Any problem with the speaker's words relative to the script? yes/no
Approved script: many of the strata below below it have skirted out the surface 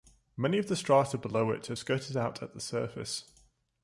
yes